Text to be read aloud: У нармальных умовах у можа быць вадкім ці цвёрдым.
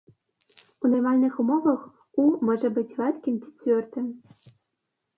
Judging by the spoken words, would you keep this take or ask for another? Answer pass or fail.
pass